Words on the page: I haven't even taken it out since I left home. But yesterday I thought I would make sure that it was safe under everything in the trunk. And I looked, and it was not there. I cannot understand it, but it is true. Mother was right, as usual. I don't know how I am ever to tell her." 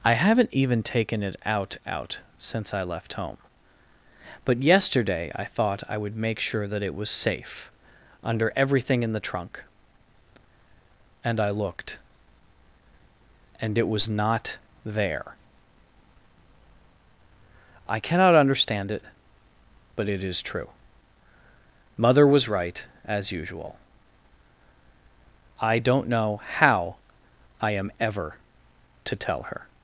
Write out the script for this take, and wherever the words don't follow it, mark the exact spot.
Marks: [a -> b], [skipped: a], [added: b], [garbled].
I haven't even taken it out [added: out] since I left home. But yesterday I thought I would make sure that it was safe under everything in the trunk. And I looked, and it was not there. I cannot understand it, but it is true. Mother was right, as usual. I don't know how I am ever to tell her."